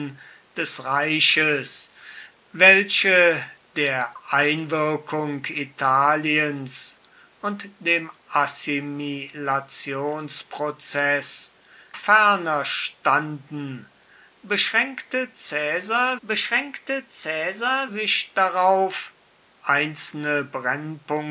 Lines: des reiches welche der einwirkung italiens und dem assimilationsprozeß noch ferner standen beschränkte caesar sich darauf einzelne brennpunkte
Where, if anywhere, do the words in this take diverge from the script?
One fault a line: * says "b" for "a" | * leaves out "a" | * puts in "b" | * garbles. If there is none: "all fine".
* leaves out "noch"
* puts in "beschränkte caesar"